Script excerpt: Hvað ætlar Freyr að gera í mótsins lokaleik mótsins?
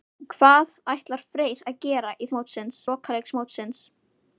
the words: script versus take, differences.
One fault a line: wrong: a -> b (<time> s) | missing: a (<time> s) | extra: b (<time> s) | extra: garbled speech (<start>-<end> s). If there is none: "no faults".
no faults